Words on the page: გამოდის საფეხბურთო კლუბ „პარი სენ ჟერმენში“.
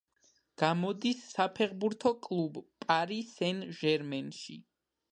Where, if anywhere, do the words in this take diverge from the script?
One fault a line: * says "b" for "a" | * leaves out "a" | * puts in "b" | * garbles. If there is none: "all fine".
all fine